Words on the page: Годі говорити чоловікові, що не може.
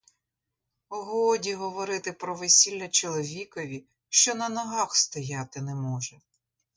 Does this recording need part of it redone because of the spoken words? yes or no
yes